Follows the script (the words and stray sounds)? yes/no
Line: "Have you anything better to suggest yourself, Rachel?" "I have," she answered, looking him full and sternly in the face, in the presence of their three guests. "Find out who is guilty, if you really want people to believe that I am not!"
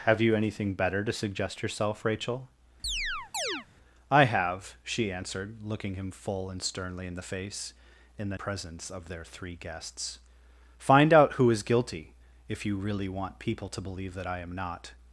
no